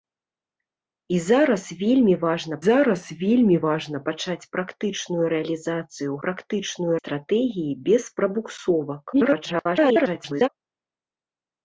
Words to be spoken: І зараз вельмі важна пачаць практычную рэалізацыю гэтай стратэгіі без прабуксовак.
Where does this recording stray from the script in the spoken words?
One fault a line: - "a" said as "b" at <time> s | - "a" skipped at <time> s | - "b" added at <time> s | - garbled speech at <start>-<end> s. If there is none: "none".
- "зараз вельмі важна" added at 2.7 s
- "гэтай" said as "практычную" at 6.3 s
- garbled speech at 9.1-10.5 s